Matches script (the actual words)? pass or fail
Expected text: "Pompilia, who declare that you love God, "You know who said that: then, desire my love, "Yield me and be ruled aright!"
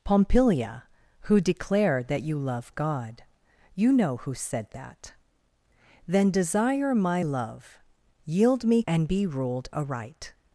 pass